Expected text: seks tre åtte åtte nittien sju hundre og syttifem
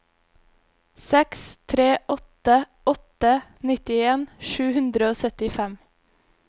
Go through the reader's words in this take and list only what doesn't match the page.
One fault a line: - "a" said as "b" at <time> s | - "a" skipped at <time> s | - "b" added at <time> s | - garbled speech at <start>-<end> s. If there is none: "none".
none